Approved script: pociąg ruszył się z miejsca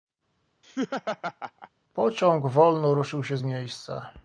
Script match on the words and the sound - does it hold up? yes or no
no